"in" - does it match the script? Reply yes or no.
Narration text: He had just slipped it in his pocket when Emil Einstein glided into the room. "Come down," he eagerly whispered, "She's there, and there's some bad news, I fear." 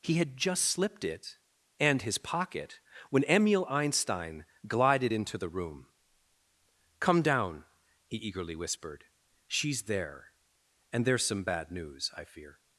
no